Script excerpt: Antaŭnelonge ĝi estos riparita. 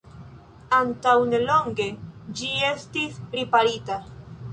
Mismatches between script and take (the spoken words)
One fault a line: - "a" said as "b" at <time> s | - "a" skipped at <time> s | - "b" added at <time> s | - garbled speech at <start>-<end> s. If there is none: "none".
- "estos" said as "estis" at 2.7 s